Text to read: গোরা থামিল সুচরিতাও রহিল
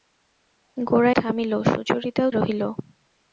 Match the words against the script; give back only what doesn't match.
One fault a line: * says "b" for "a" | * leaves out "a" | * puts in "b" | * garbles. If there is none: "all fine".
all fine